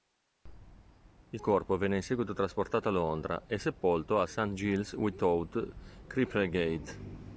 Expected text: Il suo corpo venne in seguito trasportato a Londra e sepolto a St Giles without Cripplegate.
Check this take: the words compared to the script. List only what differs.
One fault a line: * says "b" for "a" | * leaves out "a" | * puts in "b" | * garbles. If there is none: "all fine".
* leaves out "suo"